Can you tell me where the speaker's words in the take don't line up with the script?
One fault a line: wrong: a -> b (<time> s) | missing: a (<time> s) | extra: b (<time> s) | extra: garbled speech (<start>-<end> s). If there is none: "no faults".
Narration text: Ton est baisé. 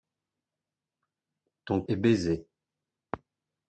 no faults